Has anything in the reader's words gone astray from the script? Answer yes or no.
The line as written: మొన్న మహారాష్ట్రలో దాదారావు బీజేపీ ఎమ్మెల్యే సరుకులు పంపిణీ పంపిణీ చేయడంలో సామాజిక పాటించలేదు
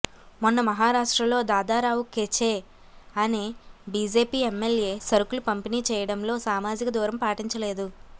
yes